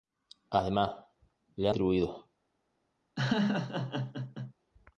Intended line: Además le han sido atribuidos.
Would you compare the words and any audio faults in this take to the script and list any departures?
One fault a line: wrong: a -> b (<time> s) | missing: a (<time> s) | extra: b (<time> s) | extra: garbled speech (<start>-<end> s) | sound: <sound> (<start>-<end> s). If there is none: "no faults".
missing: han sido (1.7 s)
sound: laugh (3.2-4.5 s)